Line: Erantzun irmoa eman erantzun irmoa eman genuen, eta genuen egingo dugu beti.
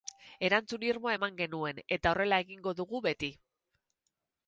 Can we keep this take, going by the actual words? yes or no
no